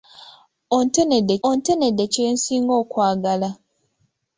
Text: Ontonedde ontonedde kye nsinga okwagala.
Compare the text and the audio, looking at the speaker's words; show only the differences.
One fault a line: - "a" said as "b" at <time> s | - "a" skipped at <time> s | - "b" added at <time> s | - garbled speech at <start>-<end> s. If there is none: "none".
none